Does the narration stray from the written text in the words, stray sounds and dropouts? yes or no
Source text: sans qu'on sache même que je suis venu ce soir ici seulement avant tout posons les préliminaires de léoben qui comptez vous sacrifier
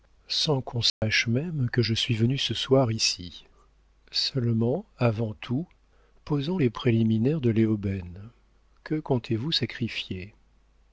yes